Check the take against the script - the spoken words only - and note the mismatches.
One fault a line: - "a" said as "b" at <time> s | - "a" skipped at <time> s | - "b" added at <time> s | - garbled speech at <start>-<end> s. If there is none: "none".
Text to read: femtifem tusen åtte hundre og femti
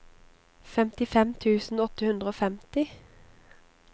none